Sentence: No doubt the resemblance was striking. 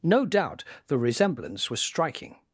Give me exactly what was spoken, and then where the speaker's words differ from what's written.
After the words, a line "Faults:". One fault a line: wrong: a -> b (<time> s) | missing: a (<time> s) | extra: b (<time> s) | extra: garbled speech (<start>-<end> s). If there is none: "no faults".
No doubt the resemblance was striking.
Faults:
no faults